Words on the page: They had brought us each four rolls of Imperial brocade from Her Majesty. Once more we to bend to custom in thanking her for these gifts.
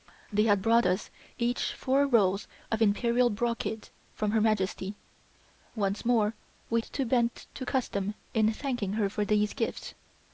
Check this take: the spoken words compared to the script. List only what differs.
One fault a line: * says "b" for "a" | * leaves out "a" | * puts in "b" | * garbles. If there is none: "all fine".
all fine